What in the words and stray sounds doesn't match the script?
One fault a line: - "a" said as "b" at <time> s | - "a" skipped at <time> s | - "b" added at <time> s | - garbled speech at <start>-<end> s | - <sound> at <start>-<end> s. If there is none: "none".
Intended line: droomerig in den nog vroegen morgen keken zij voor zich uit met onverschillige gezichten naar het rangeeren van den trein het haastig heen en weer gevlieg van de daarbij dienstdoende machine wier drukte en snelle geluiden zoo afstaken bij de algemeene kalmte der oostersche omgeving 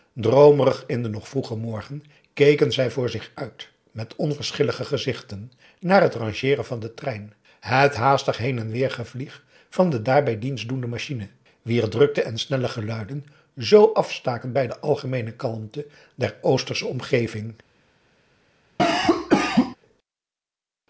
- cough at 18.8-19.8 s